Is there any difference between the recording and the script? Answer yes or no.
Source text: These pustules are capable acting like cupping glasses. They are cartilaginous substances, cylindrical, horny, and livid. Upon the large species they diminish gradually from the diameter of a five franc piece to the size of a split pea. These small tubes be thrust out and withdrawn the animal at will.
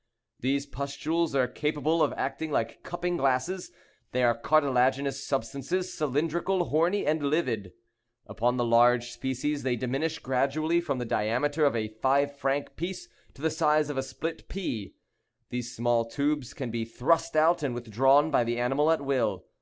yes